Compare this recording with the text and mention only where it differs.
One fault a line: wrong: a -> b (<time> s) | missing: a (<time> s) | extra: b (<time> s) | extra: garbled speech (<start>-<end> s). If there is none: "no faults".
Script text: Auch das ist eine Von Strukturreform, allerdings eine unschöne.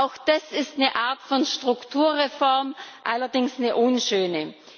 extra: Art (1.0 s)